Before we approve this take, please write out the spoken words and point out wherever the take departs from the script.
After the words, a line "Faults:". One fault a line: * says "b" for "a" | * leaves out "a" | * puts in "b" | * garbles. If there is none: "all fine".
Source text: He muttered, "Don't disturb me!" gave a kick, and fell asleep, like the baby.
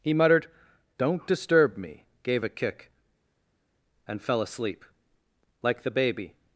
He muttered, "Don't disturb me!" gave a kick, and fell asleep, like the baby.
Faults:
all fine